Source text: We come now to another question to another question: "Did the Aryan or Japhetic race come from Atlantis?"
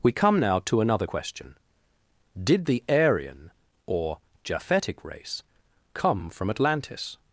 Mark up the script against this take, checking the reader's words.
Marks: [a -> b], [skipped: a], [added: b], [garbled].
We come now to another question [skipped: to another question:] "Did the Aryan or Japhetic race come from Atlantis?"